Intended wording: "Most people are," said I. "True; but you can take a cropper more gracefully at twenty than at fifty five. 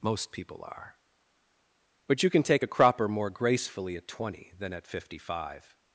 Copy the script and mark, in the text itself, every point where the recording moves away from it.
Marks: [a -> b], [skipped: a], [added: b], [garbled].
"Most people are," [skipped: said I. "True;] but you can take a cropper more gracefully at twenty than at fifty five.